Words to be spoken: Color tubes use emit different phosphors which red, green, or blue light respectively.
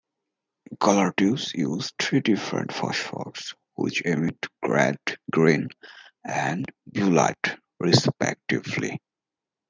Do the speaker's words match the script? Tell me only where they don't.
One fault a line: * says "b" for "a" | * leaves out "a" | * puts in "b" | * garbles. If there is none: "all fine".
* says "three" for "emit"
* puts in "emit"
* says "and" for "or"